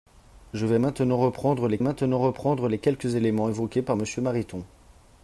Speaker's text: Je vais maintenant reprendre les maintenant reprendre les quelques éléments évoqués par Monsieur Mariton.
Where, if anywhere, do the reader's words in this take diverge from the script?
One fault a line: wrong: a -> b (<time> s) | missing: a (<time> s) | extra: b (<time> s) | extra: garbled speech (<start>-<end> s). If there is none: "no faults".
no faults